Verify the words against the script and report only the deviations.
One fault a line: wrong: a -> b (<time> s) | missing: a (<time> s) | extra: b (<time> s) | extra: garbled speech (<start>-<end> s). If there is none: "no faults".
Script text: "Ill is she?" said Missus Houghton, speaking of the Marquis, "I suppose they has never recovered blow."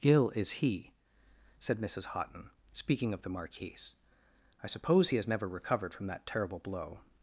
wrong: she -> he (0.7 s)
wrong: they -> he (5.1 s)
extra: from that terrible (5.9 s)